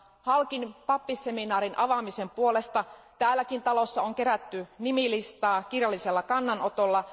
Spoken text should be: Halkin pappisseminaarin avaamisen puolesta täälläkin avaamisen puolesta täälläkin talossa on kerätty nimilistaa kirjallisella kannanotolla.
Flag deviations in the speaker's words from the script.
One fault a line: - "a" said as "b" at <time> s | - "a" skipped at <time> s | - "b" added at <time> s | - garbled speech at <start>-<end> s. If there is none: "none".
- "avaamisen puolesta täälläkin" skipped at 3.6 s